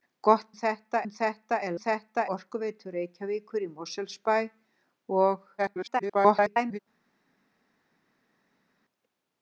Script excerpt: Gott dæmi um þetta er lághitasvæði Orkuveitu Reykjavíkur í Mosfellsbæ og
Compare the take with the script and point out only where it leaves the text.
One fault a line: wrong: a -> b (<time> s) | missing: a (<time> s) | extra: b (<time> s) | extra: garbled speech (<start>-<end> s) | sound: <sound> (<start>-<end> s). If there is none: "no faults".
wrong: dæmi -> þetta (0.6 s)
wrong: lághitasvæði -> þetta (1.8 s)
extra: garbled speech (5.6-6.8 s)